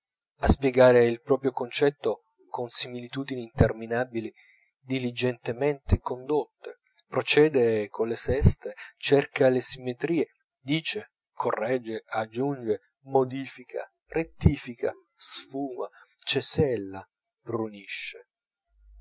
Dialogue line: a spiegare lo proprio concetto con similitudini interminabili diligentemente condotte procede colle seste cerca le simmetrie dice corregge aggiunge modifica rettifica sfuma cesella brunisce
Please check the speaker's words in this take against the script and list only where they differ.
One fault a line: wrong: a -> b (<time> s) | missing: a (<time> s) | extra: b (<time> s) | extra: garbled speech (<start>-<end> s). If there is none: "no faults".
wrong: lo -> il (1.1 s)